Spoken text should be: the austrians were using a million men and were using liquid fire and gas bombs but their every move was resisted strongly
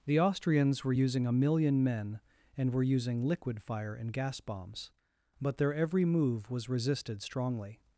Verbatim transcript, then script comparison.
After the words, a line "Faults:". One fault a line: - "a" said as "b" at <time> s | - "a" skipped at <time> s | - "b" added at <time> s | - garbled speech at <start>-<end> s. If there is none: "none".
the austrians were using a million men and were using liquid fire and gas bombs but their every move was resisted strongly
Faults:
none